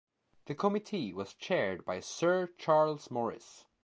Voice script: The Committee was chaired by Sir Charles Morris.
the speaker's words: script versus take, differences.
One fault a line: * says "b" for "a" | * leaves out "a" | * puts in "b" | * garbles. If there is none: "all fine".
all fine